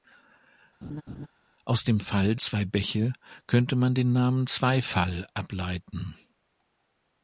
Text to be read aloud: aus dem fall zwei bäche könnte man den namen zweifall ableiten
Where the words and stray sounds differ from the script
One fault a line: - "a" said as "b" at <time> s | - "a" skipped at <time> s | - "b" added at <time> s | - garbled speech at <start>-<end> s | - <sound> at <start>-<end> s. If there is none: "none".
- laugh at 0.8-1.3 s